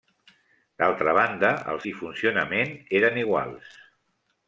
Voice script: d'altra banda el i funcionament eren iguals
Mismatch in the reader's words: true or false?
false